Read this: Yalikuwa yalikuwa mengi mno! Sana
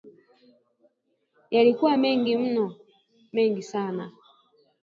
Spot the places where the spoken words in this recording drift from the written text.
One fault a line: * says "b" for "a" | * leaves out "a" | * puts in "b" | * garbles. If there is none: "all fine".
* leaves out "yalikuwa"
* puts in "Mengi"